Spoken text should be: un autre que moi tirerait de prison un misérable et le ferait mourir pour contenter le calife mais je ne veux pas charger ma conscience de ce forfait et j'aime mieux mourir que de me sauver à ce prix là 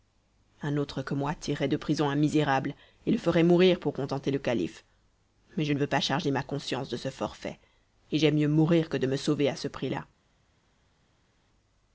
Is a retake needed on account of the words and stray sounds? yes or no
no